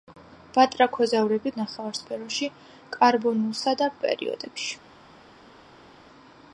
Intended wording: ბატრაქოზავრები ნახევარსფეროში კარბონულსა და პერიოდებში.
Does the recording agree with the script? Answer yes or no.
yes